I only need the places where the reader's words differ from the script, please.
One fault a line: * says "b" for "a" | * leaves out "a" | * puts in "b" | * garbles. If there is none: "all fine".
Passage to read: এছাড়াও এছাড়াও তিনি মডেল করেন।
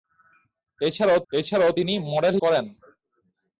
all fine